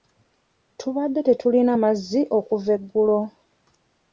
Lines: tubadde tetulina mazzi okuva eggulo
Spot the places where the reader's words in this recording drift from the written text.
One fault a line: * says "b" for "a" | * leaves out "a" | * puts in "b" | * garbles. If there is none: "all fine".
all fine